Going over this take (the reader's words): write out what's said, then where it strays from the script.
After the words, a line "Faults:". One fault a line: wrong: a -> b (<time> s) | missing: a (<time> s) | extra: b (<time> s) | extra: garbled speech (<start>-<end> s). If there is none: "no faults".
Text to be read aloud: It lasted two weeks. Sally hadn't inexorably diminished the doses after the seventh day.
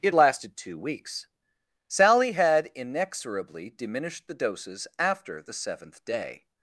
It lasted two weeks. Sally had inexorably diminished the doses after the seventh day.
Faults:
wrong: hadn't -> had (2.3 s)